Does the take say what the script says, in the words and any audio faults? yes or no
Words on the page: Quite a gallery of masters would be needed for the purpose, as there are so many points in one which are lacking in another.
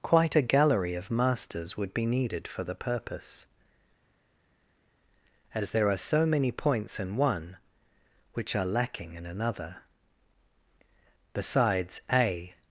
no